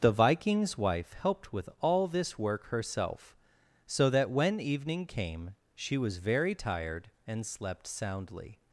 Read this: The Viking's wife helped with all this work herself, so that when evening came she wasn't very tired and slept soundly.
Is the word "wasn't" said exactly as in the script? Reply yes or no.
no